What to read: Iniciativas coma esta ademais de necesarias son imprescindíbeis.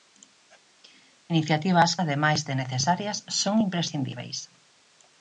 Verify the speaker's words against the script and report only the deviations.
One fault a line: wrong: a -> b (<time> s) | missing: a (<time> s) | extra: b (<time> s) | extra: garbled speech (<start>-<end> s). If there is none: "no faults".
missing: coma esta (1.9 s)